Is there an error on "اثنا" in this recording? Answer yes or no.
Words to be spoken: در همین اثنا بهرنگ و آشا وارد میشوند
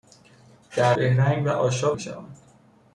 yes